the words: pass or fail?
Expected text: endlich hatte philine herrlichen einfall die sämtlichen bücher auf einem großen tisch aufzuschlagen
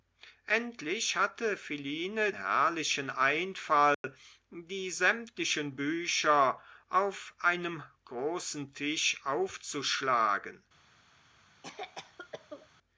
pass